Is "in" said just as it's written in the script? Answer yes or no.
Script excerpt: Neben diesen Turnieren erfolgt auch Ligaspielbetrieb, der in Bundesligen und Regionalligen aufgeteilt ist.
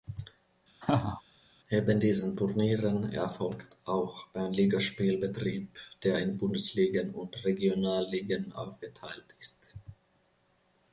yes